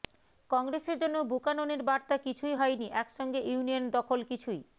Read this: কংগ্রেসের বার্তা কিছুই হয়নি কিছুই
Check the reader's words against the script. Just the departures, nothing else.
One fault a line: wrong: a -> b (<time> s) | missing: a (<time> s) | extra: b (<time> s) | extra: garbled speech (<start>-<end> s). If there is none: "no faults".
extra: জন্য বুকাননের (1.0 s)
extra: একসঙ্গে ইউনিয়ন দখল (2.9 s)